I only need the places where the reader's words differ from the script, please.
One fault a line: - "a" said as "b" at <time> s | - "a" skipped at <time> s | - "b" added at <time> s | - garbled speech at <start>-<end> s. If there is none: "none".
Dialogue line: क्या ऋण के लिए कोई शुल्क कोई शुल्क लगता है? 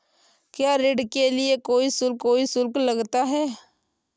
none